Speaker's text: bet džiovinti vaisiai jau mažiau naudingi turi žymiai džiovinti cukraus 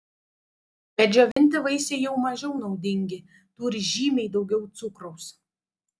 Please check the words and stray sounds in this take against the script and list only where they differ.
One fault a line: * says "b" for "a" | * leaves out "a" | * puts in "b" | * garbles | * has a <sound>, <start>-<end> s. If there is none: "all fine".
* has a dropout, 1.3-1.4 s
* says "daugiau" for "džiovinti"